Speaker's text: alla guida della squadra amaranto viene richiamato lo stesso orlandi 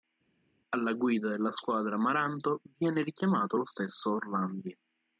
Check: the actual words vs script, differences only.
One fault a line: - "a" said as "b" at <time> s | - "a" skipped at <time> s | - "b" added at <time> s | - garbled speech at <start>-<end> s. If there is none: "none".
none